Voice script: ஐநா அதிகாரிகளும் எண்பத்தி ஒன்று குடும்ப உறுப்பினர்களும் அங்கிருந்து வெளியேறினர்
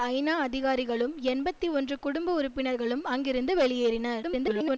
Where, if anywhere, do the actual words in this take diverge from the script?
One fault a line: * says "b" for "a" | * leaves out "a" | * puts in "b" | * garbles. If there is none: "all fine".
* garbles